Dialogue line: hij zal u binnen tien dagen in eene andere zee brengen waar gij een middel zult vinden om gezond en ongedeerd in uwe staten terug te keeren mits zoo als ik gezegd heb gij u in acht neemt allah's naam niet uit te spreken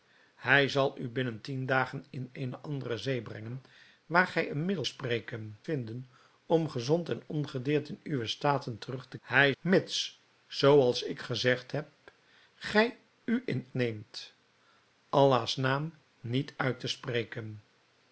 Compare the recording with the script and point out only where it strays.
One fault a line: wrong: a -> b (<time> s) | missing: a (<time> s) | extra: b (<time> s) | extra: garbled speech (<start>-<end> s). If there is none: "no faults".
wrong: zult -> spreken (4.8 s)
wrong: keeren -> hij (9.2 s)
missing: acht (13.7 s)